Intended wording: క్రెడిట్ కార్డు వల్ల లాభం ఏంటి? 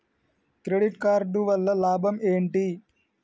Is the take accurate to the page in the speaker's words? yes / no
yes